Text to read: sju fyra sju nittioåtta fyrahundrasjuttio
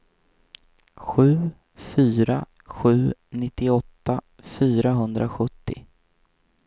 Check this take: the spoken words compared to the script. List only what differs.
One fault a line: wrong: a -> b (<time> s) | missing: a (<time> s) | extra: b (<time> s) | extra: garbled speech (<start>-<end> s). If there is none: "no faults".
no faults